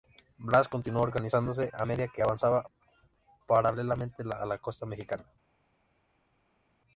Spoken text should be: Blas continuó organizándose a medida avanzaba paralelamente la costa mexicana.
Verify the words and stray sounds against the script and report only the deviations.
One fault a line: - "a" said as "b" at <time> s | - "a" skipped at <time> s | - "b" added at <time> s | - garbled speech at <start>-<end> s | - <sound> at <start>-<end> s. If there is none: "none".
- "que" added at 2.1 s
- "a" added at 4.3 s